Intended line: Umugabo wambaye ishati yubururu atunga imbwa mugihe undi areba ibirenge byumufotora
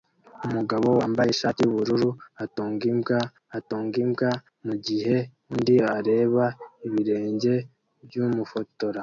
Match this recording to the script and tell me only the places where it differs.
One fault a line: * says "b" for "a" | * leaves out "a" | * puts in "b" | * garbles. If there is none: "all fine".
* puts in "atunga imbwa"